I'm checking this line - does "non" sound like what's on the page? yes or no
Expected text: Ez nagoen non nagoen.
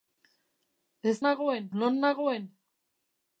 yes